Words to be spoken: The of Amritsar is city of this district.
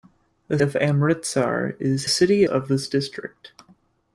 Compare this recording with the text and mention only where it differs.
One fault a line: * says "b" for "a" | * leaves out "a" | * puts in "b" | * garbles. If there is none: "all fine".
all fine